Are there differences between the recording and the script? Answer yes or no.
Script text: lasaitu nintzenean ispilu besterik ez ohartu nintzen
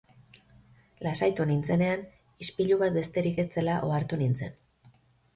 yes